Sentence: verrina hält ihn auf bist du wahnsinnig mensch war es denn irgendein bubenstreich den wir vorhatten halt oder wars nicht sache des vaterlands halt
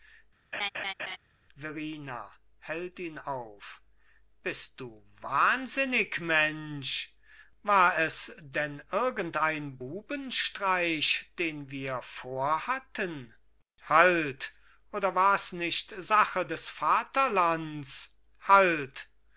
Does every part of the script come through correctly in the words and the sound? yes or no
no